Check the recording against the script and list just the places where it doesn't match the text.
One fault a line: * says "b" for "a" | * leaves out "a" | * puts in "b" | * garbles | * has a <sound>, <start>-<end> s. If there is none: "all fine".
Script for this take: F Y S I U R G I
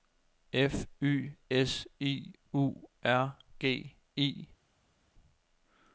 all fine